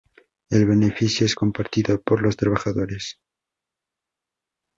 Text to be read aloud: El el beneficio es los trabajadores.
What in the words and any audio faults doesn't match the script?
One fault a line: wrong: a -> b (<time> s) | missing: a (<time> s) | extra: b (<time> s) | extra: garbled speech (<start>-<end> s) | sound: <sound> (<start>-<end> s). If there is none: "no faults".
missing: el (0.7 s)
extra: compartido por (1.3 s)